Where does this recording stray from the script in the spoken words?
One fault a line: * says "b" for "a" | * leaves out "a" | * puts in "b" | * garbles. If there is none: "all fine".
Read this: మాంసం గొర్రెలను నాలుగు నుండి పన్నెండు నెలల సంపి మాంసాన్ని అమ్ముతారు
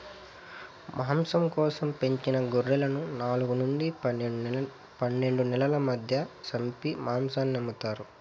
* puts in "కోసం పెంచిన"
* puts in "మధ్య"